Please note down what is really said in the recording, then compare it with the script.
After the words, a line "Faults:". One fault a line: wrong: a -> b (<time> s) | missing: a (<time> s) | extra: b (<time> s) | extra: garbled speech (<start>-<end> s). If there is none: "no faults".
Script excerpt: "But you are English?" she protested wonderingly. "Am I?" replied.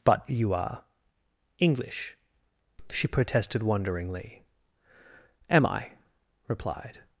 "But you are English?" she protested wonderingly. "Am I?" replied.
Faults:
no faults